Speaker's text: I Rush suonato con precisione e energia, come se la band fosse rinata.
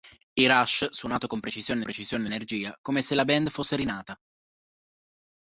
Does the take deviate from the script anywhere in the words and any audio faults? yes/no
yes